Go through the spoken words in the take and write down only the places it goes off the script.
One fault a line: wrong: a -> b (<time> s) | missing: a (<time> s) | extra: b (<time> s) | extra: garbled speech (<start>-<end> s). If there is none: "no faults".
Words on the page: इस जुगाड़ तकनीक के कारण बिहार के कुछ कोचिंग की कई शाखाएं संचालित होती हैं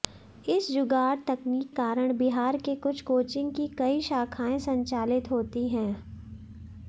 missing: के (1.7 s)